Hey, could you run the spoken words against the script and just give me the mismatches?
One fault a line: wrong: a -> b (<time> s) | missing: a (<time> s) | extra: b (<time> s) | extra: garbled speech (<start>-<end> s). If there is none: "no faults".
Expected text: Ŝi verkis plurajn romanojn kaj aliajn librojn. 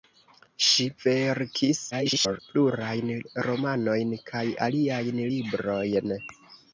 extra: garbled speech (1.9-2.4 s)